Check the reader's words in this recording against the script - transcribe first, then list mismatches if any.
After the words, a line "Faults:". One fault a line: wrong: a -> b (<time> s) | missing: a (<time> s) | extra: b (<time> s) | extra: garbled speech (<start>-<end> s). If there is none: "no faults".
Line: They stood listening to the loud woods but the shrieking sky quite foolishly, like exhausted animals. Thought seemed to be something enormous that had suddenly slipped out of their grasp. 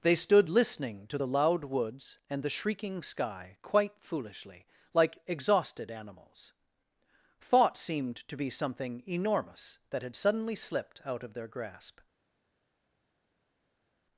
They stood listening to the loud woods and the shrieking sky quite foolishly, like exhausted animals. Thought seemed to be something enormous that had suddenly slipped out of their grasp.
Faults:
wrong: but -> and (2.3 s)